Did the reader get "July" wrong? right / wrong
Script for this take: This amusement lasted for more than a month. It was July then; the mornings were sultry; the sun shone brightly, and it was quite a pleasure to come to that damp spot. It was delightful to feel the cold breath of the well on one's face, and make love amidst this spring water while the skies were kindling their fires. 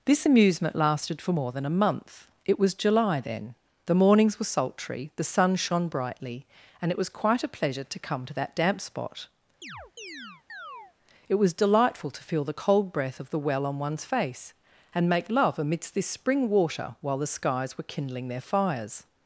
right